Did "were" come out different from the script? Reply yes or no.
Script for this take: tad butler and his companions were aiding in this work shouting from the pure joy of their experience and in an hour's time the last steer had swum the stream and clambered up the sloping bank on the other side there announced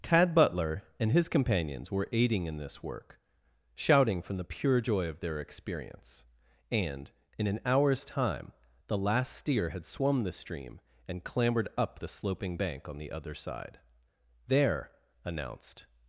no